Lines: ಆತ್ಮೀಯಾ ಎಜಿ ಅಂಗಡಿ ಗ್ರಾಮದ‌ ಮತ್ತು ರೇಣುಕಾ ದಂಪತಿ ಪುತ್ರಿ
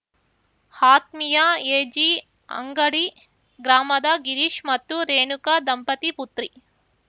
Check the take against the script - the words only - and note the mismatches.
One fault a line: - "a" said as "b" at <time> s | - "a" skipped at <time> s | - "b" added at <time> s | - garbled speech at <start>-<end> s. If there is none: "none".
- "ಗಿರೀಶ್" added at 4.2 s